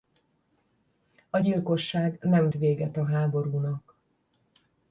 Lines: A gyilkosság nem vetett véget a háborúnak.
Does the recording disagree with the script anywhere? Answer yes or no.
yes